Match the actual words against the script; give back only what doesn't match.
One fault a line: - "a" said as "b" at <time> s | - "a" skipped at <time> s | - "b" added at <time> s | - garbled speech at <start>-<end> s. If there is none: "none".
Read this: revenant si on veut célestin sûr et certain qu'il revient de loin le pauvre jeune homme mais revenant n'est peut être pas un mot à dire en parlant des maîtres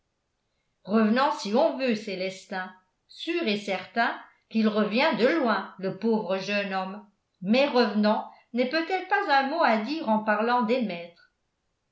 none